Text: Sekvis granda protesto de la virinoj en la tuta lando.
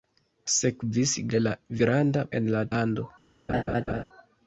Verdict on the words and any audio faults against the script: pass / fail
fail